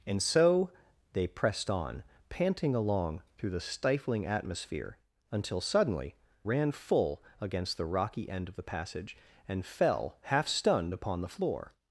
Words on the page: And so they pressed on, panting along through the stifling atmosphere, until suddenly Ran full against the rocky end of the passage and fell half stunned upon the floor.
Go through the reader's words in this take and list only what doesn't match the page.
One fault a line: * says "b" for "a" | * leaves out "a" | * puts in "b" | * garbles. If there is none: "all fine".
all fine